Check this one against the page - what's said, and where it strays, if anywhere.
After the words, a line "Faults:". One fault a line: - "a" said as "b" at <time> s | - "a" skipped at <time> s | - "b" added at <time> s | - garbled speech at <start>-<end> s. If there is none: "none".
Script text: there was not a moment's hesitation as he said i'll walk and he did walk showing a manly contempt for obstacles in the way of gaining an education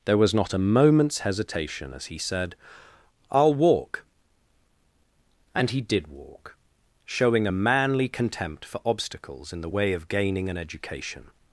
there was not a moment's hesitation as he said i'll walk and he did walk showing a manly contempt for obstacles in the way of gaining an education
Faults:
none